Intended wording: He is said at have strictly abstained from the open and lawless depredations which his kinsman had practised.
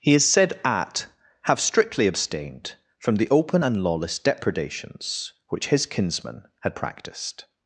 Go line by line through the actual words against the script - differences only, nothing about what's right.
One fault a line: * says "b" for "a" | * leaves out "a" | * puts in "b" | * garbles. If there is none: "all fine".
all fine